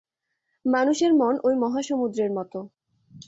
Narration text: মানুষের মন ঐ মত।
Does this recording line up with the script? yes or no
no